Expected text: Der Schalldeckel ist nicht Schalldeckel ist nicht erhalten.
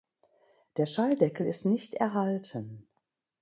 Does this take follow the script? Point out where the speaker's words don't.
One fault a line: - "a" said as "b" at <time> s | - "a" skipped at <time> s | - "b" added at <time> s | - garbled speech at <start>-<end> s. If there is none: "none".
- "Schalldeckel ist nicht" skipped at 2.0 s